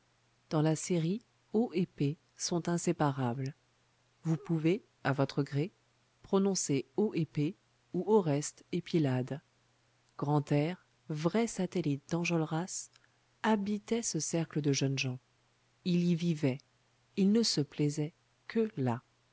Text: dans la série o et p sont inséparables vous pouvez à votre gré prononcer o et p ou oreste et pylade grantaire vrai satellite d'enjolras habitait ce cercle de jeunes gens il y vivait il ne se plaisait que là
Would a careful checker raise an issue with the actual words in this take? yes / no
no